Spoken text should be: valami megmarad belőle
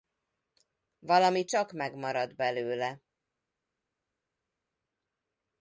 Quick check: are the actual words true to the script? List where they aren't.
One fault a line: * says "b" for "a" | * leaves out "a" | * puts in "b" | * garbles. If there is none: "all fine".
* puts in "csak"